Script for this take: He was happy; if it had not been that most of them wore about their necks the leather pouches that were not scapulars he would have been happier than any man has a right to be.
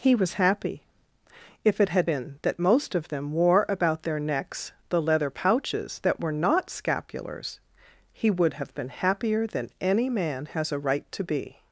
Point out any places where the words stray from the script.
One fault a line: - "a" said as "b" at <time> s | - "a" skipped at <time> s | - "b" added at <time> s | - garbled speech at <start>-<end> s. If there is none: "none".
- "not" skipped at 2.1 s